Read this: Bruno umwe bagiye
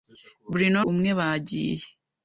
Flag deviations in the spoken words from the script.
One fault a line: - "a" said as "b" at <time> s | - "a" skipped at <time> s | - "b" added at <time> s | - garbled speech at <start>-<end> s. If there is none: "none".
none